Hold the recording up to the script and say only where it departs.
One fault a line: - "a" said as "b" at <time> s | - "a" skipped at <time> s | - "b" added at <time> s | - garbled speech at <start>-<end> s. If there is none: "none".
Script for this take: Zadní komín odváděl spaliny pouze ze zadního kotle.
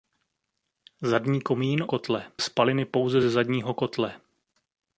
- "odváděl" said as "kotle" at 1.9 s